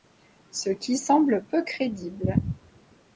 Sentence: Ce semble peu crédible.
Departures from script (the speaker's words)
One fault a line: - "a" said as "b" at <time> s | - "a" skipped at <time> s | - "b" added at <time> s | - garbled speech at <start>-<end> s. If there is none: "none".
- "qui" added at 0.7 s